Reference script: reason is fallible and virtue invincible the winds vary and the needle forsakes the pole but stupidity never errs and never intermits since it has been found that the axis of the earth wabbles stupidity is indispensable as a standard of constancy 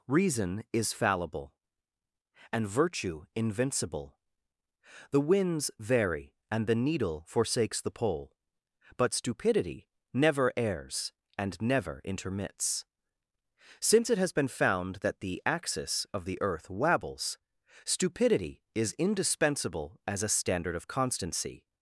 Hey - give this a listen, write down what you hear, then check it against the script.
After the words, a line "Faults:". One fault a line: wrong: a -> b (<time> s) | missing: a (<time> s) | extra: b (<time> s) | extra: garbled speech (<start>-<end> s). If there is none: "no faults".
reason is fallible and virtue invincible the winds vary and the needle forsakes the pole but stupidity never errs and never intermits since it has been found that the axis of the earth wabbles stupidity is indispensable as a standard of constancy
Faults:
no faults